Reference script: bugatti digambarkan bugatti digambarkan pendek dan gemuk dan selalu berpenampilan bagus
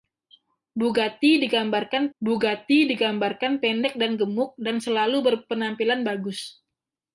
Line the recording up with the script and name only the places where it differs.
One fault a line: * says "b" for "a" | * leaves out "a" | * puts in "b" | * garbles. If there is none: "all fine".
all fine